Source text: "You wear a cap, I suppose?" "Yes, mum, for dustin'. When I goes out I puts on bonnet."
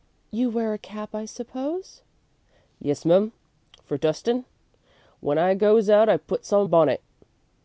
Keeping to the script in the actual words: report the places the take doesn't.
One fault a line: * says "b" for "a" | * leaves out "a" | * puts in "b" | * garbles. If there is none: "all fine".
all fine